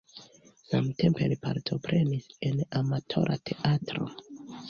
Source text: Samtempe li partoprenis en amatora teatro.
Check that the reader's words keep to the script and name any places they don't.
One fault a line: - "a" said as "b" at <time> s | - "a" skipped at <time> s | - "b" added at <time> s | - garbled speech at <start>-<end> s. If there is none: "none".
none